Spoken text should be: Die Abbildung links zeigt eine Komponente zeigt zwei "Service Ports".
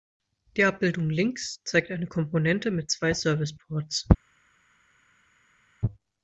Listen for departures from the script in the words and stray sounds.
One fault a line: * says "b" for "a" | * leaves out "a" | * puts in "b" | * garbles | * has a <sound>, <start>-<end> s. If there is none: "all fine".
* says "mit" for "zeigt"